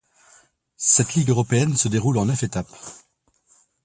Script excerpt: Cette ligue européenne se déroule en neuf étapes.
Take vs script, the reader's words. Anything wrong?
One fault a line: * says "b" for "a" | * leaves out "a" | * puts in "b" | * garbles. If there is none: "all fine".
all fine